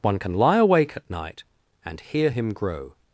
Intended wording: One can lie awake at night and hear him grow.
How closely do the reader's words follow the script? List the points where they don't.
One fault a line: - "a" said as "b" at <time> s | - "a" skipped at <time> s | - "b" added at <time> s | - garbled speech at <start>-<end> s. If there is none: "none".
none